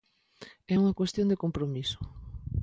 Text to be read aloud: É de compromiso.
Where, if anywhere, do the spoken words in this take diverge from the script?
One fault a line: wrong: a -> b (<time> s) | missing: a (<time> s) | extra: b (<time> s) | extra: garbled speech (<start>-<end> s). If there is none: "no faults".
extra: unha cuestión (0.8 s)